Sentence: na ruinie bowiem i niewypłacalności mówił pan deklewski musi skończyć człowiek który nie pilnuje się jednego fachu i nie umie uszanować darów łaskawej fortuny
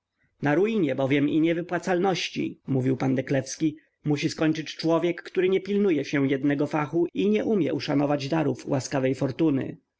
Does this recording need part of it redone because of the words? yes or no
no